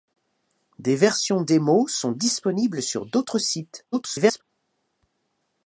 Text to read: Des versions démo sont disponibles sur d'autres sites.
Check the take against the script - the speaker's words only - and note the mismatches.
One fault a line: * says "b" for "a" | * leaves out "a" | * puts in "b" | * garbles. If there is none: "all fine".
* garbles